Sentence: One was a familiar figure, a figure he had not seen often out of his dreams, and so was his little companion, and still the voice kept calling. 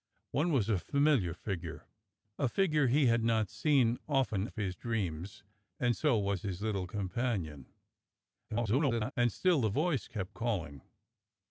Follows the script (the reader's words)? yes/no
no